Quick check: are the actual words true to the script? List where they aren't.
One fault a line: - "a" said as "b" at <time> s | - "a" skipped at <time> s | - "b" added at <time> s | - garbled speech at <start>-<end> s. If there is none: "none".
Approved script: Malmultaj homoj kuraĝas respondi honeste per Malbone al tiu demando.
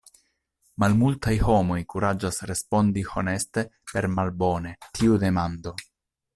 - "al" skipped at 4.8 s